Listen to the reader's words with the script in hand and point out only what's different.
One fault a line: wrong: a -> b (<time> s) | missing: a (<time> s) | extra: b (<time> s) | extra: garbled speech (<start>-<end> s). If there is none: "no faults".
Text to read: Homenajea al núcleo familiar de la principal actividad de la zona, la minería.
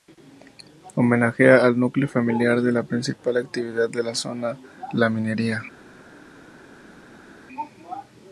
no faults